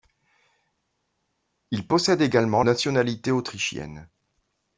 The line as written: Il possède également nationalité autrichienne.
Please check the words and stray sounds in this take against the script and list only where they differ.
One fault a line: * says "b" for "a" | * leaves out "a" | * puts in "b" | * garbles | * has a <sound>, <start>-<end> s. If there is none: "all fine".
all fine